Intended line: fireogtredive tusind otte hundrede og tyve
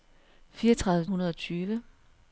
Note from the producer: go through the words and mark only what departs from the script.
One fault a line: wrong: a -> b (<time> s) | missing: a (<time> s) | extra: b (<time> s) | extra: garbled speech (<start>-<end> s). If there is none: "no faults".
missing: tusind otte (1.1 s)